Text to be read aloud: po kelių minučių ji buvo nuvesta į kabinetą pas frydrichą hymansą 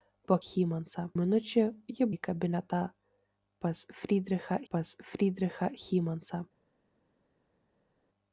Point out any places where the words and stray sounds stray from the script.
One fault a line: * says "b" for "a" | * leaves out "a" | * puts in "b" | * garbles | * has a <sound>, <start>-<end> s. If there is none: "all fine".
* says "hymansą" for "kelių"
* says "į kabinetą pas frydrichą" for "buvo nuvesta į kabinetą"